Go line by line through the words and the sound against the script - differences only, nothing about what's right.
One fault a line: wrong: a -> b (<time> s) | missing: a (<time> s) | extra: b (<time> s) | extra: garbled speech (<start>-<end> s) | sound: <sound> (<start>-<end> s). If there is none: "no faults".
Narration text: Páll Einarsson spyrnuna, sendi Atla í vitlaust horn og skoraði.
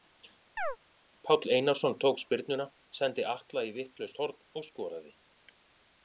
sound: chirp (0.6-0.8 s)
extra: tók (2.0 s)